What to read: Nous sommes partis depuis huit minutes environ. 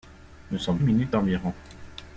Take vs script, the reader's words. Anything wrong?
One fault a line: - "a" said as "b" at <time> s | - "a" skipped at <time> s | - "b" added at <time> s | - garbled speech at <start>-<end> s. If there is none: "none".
- "partis depuis huit" skipped at 0.8 s